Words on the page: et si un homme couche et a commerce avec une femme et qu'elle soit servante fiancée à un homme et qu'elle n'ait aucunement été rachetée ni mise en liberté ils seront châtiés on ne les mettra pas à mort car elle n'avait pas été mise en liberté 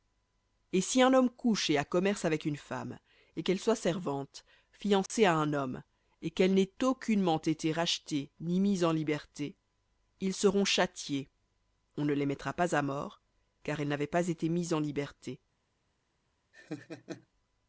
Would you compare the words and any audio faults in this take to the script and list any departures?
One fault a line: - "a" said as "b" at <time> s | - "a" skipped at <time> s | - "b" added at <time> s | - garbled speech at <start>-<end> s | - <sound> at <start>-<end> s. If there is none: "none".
- dropout at 5.1-5.1 s
- laugh at 16.5-17.3 s